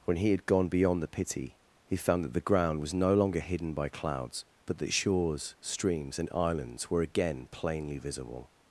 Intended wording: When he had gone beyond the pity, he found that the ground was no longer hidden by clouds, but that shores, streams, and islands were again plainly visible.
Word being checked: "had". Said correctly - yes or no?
yes